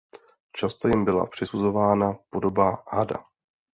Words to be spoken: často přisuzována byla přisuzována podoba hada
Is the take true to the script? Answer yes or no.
no